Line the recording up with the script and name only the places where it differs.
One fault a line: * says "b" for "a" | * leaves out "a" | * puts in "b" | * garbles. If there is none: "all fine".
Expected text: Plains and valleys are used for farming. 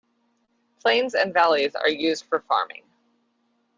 all fine